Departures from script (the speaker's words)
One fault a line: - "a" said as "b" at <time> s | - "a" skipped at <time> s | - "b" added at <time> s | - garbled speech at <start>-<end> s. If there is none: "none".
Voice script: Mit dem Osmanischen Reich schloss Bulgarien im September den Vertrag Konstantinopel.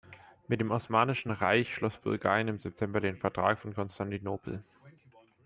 - "von" added at 3.6 s